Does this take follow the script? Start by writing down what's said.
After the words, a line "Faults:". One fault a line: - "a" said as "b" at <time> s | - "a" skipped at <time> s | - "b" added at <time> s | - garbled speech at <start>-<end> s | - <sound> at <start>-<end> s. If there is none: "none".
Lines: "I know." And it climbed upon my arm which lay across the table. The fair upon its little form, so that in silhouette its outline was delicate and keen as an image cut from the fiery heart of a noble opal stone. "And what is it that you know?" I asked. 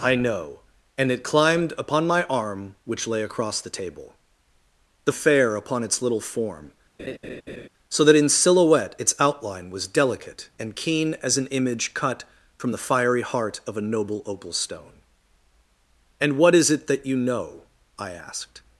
"I know." And it climbed upon my arm which lay across the table. The fair upon its little form, so that in silhouette its outline was delicate and keen as an image cut from the fiery heart of a noble opal stone. "And what is it that you know?" I asked.
Faults:
- laugh at 7.0-7.7 s